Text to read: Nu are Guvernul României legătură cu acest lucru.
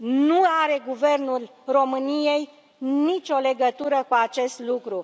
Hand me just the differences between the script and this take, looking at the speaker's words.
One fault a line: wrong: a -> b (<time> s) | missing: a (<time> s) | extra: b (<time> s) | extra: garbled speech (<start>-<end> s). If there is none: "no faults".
extra: nicio (2.8 s)